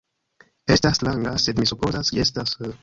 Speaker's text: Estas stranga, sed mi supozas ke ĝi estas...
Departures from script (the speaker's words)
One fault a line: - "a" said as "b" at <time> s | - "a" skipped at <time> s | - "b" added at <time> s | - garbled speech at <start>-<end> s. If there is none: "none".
- "ke" skipped at 2.1 s